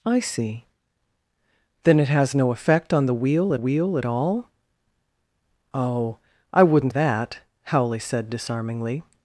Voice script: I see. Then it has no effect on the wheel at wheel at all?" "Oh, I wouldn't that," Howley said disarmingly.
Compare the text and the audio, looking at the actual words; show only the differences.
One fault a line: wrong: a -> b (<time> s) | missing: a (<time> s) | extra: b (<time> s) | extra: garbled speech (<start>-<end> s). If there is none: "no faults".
no faults